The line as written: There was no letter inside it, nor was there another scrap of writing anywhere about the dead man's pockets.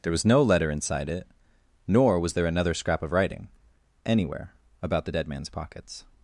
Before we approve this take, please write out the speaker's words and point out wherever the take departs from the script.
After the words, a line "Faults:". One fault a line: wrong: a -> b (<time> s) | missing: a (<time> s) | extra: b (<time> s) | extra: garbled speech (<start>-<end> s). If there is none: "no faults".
There was no letter inside it, nor was there another scrap of writing anywhere about the dead man's pockets.
Faults:
no faults